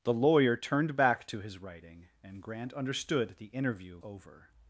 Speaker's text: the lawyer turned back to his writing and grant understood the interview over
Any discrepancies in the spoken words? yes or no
no